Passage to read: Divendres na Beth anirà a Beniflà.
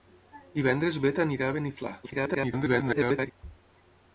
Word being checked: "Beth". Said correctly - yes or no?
yes